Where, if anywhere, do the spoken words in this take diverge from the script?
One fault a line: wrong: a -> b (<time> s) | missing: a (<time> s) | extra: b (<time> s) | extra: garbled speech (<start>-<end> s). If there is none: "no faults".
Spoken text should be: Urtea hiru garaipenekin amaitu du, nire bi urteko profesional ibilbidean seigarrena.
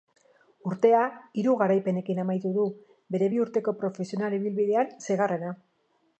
wrong: nire -> bere (3.2 s)